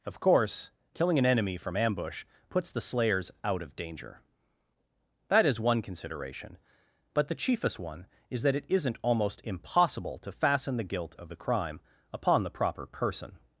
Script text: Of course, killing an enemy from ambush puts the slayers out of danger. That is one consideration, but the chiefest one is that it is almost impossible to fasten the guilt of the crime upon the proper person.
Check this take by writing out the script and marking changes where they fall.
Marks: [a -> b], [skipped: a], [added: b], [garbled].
Of course, killing an enemy from ambush puts the slayers out of danger. That is one consideration, but the chiefest one is that it [is -> isn't] almost impossible to fasten the guilt of the crime upon the proper person.